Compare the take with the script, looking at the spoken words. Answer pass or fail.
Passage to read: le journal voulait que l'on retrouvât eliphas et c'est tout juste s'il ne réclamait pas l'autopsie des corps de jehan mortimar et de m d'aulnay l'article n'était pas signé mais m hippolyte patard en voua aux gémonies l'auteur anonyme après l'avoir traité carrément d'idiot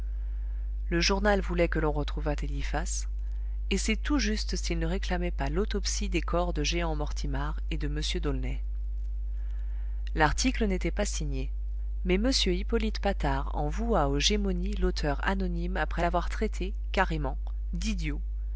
pass